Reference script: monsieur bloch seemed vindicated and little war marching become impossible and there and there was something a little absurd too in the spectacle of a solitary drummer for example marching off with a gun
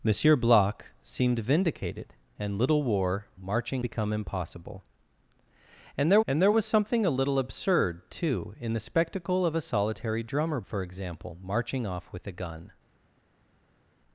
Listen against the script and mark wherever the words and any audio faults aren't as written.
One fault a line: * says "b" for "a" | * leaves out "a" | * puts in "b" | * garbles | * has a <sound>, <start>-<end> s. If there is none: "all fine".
all fine